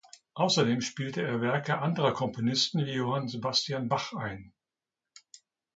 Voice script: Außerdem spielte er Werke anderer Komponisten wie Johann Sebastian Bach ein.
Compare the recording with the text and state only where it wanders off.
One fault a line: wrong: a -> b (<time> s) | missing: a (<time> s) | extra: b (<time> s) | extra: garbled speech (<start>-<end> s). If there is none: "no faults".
no faults